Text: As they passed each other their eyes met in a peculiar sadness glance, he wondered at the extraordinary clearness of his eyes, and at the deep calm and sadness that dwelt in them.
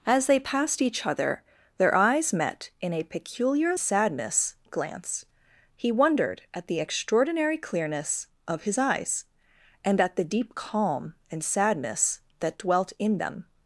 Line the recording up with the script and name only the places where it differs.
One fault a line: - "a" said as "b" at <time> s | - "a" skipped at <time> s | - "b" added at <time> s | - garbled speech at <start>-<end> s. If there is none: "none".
none